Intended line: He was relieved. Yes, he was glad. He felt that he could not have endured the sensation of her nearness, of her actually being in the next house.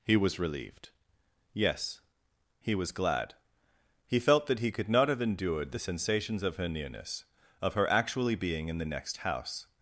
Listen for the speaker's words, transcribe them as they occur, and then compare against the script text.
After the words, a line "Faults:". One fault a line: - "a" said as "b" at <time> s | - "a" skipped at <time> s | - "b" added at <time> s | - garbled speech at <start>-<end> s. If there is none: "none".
He was relieved. Yes, he was glad. He felt that he could not have endured the sensations of her nearness, of her actually being in the next house.
Faults:
- "sensation" said as "sensations" at 5.8 s